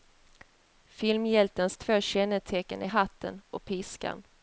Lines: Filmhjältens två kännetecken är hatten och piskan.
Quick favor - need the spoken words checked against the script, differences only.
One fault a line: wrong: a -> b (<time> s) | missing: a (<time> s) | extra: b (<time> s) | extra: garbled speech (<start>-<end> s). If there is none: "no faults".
no faults